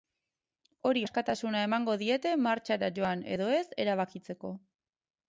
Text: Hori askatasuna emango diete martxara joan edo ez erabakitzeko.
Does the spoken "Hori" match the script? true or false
true